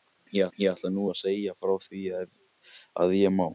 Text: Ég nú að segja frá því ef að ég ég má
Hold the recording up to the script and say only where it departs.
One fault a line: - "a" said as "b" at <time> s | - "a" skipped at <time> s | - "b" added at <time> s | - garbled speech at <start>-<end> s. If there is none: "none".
- "ætla" added at 0.7 s
- "ég" skipped at 3.4 s